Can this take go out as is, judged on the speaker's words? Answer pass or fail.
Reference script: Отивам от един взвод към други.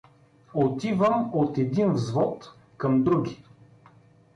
pass